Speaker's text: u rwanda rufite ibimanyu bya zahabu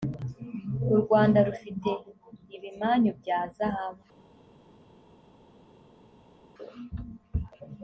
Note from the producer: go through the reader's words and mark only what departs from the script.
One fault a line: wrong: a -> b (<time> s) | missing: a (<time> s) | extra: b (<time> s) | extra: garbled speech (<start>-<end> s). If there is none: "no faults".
no faults